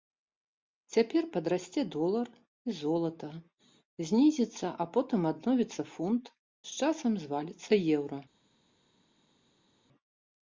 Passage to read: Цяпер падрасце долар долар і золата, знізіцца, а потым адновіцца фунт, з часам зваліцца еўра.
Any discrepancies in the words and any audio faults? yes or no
yes